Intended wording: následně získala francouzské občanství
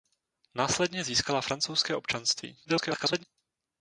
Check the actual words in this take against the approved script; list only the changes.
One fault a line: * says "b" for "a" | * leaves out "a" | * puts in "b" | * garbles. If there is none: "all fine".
* garbles